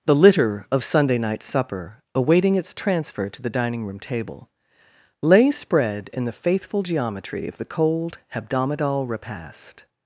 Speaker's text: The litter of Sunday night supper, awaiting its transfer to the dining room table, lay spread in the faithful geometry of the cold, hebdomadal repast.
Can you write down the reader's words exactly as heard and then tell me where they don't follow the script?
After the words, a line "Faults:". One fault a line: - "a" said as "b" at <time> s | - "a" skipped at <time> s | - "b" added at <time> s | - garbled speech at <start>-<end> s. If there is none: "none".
The litter of Sunday night supper, awaiting its transfer to the dining room table, lay spread in the faithful geometry of the cold, hebdomadal repast.
Faults:
none